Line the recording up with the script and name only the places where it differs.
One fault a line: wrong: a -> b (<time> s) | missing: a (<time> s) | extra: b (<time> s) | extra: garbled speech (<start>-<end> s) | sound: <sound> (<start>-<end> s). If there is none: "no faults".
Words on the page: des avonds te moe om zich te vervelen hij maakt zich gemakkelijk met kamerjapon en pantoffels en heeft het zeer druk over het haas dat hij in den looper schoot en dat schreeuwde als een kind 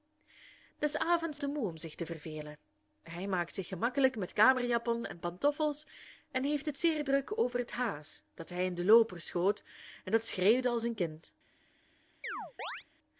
sound: chirp (12.2-12.8 s)